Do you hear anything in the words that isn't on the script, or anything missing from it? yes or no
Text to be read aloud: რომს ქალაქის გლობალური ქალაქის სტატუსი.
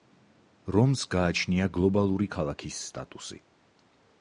yes